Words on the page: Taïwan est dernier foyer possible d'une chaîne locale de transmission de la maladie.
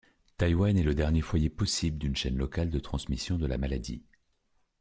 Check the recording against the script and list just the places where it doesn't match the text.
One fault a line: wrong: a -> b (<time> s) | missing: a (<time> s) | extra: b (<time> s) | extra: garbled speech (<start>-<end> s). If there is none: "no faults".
extra: le (0.8 s)